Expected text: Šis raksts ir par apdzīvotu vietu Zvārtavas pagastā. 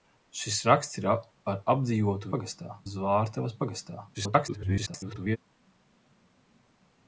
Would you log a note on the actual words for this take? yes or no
yes